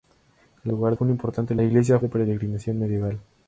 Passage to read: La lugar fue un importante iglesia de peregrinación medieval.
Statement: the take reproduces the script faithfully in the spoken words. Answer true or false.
true